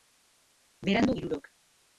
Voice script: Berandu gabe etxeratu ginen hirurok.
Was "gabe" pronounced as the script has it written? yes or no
no